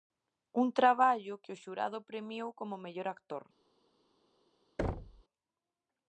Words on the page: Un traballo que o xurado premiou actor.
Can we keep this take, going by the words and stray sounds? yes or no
no